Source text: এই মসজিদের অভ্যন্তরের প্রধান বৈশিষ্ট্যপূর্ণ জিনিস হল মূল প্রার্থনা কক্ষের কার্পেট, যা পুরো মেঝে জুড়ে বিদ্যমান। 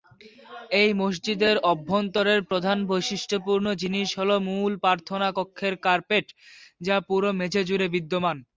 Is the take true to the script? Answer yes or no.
yes